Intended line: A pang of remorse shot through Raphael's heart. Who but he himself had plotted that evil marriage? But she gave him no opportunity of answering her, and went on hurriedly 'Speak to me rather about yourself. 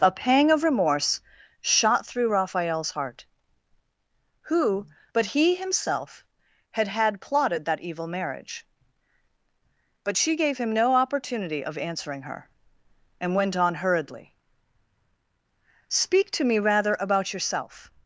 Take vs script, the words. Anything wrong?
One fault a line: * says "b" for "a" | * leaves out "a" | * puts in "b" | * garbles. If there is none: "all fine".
* puts in "had"